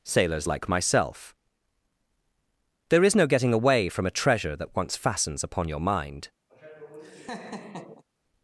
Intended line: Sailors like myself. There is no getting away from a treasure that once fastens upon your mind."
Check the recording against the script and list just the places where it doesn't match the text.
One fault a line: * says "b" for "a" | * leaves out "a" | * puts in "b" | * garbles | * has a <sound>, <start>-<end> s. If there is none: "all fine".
* has a laugh, 6.5-8.0 s